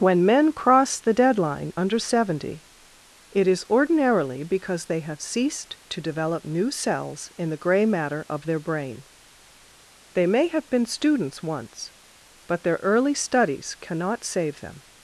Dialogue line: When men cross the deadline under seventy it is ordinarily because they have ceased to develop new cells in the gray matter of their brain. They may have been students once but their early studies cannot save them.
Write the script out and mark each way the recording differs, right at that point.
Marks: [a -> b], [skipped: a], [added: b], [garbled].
When men cross the deadline under seventy it is ordinarily because they have ceased to develop new cells in the gray matter of their brain. They may have been students once but their early studies cannot save them.